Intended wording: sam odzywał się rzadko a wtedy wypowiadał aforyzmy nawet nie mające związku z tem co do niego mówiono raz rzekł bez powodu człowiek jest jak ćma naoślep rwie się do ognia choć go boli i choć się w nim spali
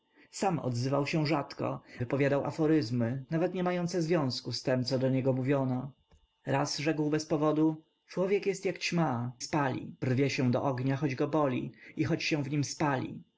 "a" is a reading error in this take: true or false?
true